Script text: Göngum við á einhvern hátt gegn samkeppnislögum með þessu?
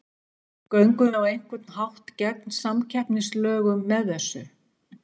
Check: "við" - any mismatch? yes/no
yes